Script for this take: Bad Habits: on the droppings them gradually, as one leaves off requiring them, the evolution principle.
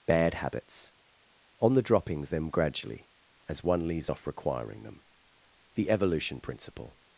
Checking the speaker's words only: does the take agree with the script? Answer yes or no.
yes